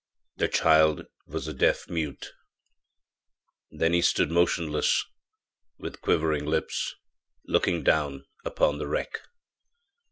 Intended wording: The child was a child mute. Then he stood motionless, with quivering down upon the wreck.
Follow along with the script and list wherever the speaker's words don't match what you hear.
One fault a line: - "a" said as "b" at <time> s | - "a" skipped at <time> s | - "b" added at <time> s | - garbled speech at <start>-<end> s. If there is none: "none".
- "child" said as "deaf" at 1.5 s
- "lips looking" added at 6.4 s